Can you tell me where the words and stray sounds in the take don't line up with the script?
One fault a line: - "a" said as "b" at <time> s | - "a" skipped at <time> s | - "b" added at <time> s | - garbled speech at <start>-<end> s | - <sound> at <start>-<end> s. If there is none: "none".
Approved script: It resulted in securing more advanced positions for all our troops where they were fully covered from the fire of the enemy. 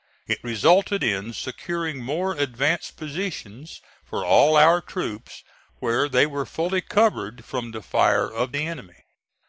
none